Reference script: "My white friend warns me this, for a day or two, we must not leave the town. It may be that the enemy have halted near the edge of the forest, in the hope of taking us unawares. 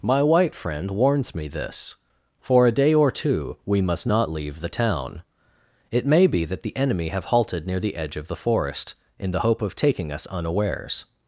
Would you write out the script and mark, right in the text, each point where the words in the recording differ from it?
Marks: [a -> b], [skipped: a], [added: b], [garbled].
"My white friend warns me this, for a day or two, we must not leave the town. It may be that the enemy have halted near the edge of the forest, in the hope of taking us unawares.